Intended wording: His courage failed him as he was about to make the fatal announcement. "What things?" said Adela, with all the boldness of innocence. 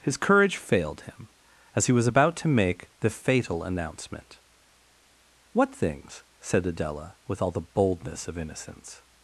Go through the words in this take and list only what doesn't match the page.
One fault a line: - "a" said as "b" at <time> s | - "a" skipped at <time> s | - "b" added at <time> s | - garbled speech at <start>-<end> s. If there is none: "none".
none